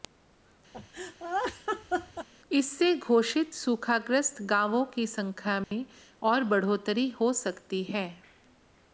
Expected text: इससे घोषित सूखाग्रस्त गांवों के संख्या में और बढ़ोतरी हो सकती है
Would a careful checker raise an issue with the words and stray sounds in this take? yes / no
yes